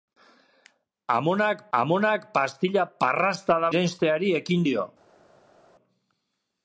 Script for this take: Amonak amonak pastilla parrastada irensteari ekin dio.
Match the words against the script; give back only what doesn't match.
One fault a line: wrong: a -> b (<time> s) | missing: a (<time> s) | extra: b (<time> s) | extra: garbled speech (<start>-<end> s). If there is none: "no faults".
no faults